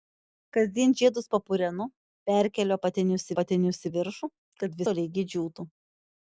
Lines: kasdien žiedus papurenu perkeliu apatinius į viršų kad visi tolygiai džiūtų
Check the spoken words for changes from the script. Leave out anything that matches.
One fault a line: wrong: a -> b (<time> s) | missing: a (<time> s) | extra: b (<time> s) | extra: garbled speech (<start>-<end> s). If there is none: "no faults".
extra: apatinius (3.3 s)
missing: visi (4.8 s)